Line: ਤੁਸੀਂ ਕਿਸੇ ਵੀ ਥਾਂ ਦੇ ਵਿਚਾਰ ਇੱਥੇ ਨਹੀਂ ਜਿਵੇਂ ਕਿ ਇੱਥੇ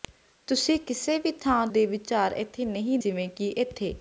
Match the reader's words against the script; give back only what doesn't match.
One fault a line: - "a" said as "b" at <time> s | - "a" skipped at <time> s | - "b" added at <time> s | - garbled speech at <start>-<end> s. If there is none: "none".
none